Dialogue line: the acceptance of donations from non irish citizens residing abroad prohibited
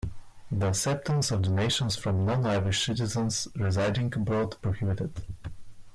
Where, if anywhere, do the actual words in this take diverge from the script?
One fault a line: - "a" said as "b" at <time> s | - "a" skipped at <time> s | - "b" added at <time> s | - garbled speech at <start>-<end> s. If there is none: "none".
none